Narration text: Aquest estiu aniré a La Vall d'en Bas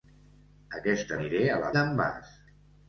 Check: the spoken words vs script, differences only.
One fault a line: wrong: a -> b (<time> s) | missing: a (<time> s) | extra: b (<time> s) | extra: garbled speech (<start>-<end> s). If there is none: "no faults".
missing: estiu (1.1 s)
missing: Vall (1.7 s)